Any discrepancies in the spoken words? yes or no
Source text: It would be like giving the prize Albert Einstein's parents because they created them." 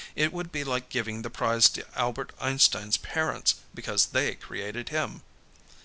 yes